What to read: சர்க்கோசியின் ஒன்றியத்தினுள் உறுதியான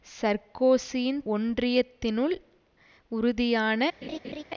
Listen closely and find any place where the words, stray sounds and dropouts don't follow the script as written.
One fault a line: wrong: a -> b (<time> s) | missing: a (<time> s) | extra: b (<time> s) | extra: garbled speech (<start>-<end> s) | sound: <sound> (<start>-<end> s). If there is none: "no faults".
sound: laugh (4.0-4.4 s)